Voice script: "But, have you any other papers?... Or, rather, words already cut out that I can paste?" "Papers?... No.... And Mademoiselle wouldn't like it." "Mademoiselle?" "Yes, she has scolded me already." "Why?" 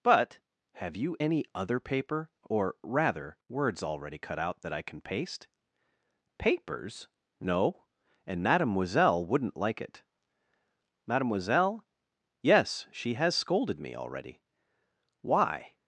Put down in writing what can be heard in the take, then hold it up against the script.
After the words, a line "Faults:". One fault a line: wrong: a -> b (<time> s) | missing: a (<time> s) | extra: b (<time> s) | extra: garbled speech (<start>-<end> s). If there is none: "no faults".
"But, have you any other paper?... Or, rather, words already cut out that I can paste?" "Papers?... No.... And Mademoiselle wouldn't like it." "Mademoiselle?" "Yes, she has scolded me already." "Why?"
Faults:
wrong: papers -> paper (1.8 s)